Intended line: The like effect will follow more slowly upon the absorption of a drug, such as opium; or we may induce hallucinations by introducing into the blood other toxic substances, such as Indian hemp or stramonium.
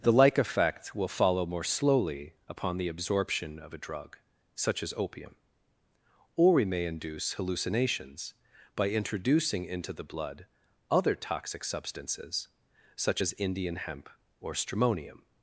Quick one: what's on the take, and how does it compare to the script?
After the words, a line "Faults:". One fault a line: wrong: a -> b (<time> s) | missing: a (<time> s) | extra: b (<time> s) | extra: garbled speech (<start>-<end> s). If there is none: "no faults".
The like effect will follow more slowly upon the absorption of a drug, such as opium; or we may induce hallucinations by introducing into the blood other toxic substances, such as Indian hemp or stramonium.
Faults:
no faults